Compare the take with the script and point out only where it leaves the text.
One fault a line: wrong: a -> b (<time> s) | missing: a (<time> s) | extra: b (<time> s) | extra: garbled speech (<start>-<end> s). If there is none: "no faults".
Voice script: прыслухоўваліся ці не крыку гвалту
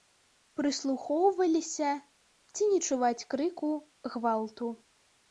extra: чуваць (2.9 s)